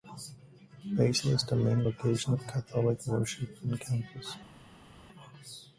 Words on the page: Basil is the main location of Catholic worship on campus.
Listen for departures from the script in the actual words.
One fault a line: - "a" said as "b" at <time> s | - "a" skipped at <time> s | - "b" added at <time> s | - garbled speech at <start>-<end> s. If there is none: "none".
none